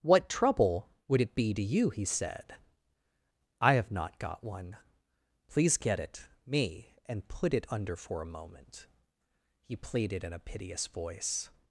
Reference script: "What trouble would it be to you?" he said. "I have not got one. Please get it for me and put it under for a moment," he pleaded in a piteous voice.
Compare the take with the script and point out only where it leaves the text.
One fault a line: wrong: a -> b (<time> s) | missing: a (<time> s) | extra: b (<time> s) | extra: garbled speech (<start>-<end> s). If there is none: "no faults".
missing: for (6.3 s)